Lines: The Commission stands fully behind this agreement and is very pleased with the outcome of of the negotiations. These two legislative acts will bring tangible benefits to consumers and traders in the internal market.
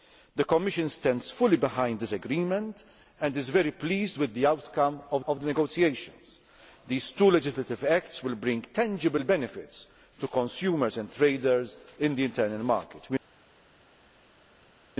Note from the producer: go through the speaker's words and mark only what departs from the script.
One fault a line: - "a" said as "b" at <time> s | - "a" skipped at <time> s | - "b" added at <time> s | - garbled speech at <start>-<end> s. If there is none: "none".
none